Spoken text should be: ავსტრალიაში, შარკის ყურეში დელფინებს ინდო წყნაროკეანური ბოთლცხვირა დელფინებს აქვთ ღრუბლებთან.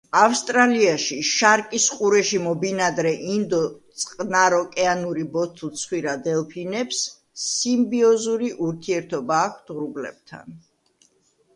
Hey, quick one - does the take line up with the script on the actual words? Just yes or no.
no